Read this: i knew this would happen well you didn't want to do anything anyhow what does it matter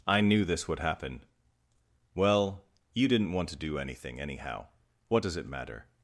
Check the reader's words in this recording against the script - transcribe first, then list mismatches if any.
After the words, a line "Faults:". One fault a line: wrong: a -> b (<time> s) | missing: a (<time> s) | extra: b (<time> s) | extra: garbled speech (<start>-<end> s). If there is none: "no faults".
i knew this would happen well you didn't want to do anything anyhow what does it matter
Faults:
no faults